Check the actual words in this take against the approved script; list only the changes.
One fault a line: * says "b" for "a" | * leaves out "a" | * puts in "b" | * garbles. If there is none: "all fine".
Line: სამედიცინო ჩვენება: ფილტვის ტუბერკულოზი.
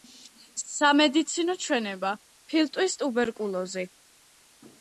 all fine